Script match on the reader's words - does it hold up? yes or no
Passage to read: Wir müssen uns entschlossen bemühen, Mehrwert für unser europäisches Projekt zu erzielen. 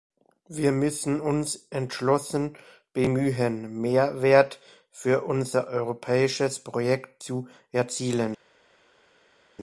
yes